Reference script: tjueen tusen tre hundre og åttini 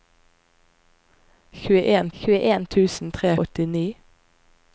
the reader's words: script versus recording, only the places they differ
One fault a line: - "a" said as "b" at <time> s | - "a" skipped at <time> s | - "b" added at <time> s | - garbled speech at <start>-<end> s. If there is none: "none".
- "tjueen" added at 2.2 s
- "hundre" skipped at 3.4 s